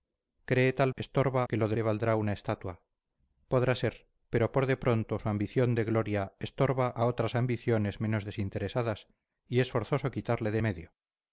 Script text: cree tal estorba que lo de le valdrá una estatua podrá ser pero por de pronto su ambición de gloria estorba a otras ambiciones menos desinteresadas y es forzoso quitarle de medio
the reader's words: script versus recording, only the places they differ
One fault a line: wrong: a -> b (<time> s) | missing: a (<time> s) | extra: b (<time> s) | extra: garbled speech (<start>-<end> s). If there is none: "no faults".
no faults